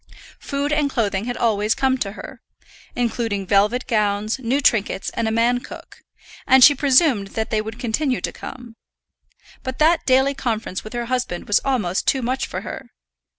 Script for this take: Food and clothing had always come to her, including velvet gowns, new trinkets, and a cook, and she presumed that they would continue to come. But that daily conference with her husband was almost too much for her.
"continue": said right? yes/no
yes